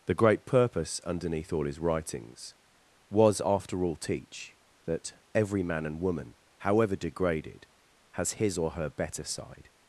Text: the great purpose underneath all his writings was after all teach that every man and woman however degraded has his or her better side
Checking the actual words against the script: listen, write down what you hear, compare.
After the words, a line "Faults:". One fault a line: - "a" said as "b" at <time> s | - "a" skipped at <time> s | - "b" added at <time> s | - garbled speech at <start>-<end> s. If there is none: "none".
the great purpose underneath all his writings was after all teach that every man and woman however degraded has his or her better side
Faults:
none